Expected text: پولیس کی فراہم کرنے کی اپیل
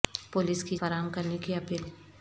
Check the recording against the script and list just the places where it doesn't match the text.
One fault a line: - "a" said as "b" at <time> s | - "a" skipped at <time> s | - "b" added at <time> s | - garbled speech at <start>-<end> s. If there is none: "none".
none